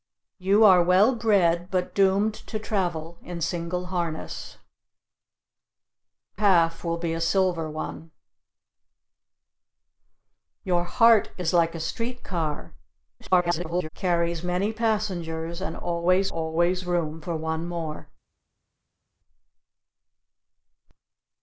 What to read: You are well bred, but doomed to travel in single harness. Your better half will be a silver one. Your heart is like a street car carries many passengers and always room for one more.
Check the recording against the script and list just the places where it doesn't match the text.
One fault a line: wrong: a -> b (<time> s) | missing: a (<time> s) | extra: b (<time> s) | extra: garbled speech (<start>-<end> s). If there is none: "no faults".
missing: Your better (4.6 s)
extra: garbled speech (13.2-13.9 s)
extra: always (16.3 s)